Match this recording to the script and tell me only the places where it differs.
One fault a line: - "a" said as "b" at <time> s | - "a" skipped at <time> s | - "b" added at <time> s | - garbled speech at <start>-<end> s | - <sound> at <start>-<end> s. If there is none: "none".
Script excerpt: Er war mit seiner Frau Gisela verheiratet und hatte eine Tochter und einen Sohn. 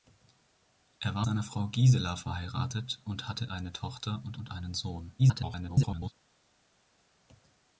- "mit" skipped at 1.3 s
- "und" added at 4.4 s
- garbled speech at 5.2-6.1 s